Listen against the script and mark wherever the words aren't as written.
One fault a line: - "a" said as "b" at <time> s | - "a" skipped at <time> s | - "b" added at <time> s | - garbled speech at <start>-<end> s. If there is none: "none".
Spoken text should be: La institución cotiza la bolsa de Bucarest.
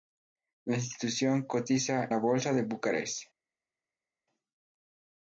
none